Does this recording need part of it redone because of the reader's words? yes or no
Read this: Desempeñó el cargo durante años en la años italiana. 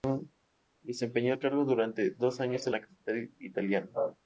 yes